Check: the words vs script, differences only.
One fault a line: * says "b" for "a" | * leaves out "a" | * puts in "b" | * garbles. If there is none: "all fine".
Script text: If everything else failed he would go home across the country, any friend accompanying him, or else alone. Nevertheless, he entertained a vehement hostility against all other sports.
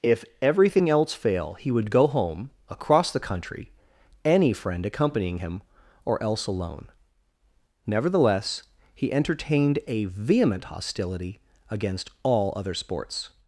* says "fail" for "failed"